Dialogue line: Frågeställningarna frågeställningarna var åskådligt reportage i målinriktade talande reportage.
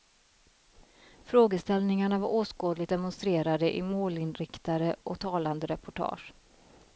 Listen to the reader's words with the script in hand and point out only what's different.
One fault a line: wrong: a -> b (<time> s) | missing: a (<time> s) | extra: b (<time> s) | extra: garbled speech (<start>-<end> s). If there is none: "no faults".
missing: frågeställningarna (2.2 s)
wrong: reportage -> demonstrerade (2.9 s)
extra: och (5.0 s)